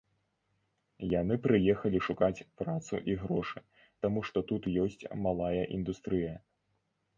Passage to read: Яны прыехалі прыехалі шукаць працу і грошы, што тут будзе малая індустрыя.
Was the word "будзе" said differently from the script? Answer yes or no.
yes